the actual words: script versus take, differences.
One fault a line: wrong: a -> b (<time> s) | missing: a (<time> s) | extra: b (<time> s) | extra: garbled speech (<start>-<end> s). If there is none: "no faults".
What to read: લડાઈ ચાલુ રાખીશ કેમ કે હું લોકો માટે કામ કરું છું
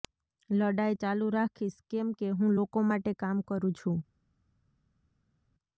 no faults